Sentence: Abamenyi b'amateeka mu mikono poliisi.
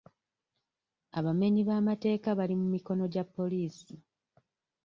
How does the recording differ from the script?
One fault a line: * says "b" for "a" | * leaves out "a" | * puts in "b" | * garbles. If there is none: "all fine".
* puts in "bali"
* puts in "gya"